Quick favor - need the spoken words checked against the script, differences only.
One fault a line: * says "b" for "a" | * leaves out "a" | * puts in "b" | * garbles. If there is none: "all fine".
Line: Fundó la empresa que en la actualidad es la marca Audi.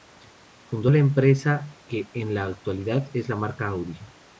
all fine